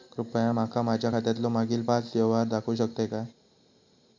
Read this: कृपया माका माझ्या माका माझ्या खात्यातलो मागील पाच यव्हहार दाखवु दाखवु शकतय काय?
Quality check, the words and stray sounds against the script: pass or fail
fail